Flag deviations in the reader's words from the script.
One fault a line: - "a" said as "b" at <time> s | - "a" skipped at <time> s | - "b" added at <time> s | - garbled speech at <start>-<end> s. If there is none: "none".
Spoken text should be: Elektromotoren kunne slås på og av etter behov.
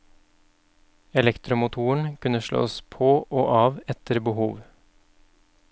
none